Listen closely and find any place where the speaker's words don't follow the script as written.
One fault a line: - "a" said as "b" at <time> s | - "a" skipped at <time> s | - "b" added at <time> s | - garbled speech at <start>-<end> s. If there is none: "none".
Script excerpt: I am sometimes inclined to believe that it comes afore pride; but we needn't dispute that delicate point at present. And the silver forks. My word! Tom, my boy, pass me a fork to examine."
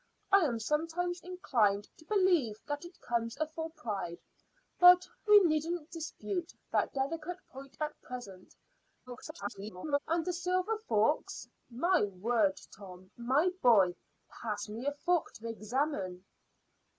- garbled speech at 9.1-10.0 s